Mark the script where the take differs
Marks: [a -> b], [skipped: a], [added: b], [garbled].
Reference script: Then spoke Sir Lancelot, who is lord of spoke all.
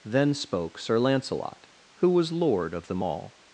Then spoke Sir Lancelot, who [is -> was] lord of [spoke -> them] all.